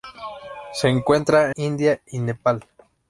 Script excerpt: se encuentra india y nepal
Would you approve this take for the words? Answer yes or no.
yes